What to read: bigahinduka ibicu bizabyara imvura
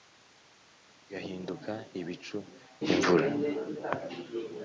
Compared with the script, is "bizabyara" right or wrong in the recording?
wrong